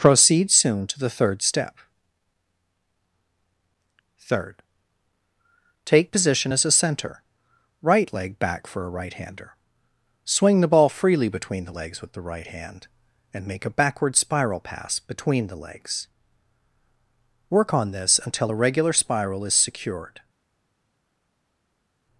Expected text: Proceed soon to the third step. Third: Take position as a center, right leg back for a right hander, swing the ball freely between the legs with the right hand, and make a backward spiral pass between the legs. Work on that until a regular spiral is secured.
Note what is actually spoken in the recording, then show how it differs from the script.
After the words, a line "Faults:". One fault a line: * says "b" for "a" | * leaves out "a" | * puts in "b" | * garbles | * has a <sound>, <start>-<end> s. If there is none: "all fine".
Proceed soon to the third step. Third: Take position as a center, right leg back for a right hander, swing the ball freely between the legs with the right hand, and make a backward spiral pass between the legs. Work on this until a regular spiral is secured.
Faults:
* says "this" for "that"